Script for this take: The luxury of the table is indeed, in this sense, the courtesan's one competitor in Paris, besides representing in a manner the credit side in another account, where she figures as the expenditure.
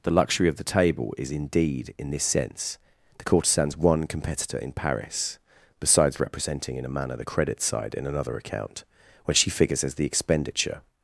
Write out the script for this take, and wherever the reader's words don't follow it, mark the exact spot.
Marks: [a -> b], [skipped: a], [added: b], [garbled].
The luxury of the table is indeed, in this sense, the courtesan's one competitor in Paris, besides representing in a manner the credit side in another account, [where -> when] she figures as the expenditure.